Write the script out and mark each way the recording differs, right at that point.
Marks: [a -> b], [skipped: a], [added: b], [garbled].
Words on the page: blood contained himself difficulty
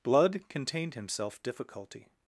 blood contained himself difficulty